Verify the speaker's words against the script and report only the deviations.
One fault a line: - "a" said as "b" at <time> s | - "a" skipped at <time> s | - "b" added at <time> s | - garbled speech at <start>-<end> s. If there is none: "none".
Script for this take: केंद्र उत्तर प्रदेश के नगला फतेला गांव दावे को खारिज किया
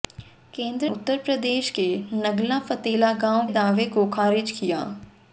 none